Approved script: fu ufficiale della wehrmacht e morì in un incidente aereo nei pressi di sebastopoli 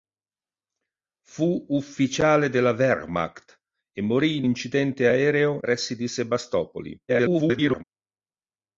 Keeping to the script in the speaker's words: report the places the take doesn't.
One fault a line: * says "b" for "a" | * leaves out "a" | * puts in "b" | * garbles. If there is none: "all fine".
* leaves out "un"
* leaves out "nei"
* garbles